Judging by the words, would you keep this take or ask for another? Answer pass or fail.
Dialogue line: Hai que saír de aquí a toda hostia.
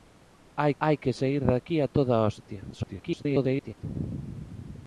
fail